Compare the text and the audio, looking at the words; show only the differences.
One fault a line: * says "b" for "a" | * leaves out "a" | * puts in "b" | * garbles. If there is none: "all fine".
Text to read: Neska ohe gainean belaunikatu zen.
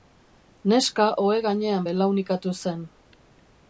all fine